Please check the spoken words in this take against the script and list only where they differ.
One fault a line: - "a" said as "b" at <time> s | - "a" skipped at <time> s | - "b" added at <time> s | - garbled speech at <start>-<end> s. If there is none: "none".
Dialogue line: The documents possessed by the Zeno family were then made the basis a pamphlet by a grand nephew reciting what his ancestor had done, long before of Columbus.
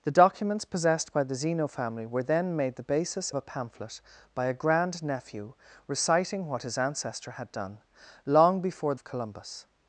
none